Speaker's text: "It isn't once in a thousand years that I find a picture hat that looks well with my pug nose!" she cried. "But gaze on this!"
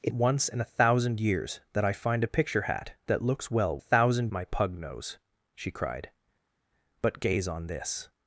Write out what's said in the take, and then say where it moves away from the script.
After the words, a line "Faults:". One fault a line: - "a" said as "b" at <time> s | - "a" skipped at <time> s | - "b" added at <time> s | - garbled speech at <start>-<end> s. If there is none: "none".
"It once in a thousand years that I find a picture hat that looks well thousand my pug nose!" she cried. "But gaze on this!"
Faults:
- "isn't" skipped at 0.1 s
- "with" said as "thousand" at 3.8 s